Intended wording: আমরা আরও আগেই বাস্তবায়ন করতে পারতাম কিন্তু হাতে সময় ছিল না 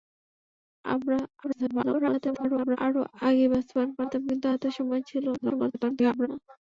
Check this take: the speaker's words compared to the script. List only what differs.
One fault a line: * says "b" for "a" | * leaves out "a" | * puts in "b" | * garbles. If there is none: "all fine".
* garbles
* leaves out "করতে"
* garbles